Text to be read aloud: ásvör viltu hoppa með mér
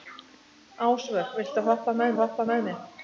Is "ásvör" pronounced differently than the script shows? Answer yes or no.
no